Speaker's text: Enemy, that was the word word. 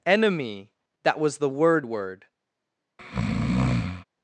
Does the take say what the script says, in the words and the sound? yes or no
no